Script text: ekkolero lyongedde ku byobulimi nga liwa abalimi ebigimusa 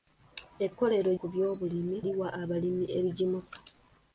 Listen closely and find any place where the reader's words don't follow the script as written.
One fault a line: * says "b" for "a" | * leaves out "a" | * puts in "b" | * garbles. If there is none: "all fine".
* leaves out "lyongedde"
* leaves out "nga"